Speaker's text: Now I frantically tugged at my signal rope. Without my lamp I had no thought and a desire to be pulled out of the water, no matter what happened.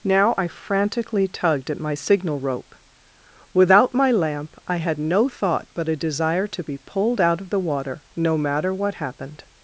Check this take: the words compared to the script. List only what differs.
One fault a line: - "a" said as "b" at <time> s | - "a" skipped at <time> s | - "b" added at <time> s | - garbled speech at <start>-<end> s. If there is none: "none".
- "and" said as "but" at 5.7 s